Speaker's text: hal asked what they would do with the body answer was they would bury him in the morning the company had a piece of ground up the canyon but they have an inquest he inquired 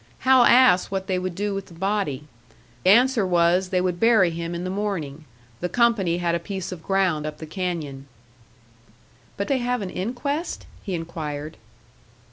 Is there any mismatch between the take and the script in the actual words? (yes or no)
no